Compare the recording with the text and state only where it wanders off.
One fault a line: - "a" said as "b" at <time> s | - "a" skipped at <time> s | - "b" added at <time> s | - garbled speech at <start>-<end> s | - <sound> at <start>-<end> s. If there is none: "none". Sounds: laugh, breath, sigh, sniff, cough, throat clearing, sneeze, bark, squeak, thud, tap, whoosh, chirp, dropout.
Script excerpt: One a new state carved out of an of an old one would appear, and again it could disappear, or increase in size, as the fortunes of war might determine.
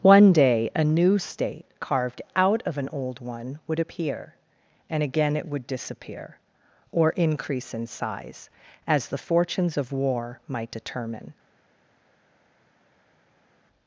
- "day" added at 0.3 s
- "of an" skipped at 2.9 s
- "could" said as "would" at 5.5 s